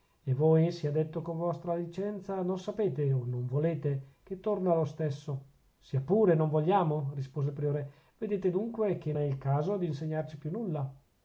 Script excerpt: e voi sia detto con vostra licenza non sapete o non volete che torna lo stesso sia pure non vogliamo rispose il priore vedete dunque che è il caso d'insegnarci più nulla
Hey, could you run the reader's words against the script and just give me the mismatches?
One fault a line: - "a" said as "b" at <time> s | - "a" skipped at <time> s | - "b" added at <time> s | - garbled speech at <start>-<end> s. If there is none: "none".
none